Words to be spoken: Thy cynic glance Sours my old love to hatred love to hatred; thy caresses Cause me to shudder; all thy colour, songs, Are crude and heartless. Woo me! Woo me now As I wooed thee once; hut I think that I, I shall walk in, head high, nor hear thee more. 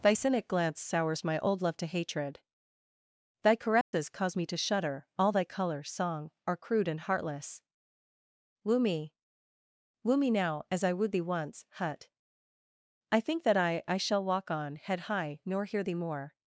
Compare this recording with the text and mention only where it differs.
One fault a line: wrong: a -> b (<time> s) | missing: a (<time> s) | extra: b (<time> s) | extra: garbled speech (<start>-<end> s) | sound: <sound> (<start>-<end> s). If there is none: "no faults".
missing: love to hatred (2.4 s)
sound: dropout (3.8-3.9 s)
wrong: songs -> song (5.8 s)
wrong: in -> on (14.5 s)